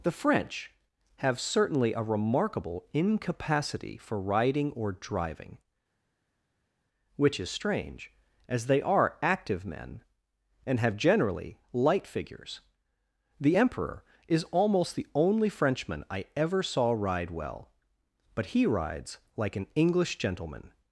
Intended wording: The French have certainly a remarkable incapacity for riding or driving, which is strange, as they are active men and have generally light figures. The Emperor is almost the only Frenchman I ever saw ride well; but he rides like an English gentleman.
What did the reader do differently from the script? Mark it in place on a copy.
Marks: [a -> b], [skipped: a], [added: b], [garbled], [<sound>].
The French have certainly a remarkable incapacity for riding or driving, which is strange, as they are active men and have generally light figures. The Emperor is almost the only Frenchman I ever saw ride well; but he rides like an English gentleman.